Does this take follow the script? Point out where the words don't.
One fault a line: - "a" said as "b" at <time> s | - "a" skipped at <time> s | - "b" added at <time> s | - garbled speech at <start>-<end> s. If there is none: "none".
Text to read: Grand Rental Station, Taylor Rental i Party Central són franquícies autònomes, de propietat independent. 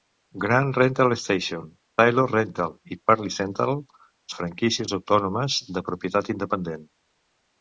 - "són" skipped at 3.8 s